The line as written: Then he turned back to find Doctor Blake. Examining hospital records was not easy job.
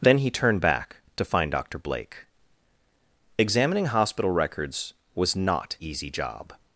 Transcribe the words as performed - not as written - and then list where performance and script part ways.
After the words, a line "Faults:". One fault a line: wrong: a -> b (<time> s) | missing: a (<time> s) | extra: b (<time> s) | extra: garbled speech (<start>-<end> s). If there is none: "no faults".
Then he turned back to find Doctor Blake. Examining hospital records was not easy job.
Faults:
no faults